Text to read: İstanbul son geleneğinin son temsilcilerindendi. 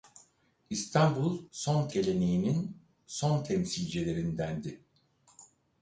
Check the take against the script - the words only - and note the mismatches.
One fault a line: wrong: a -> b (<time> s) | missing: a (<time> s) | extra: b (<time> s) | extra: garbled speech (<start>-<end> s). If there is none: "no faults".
no faults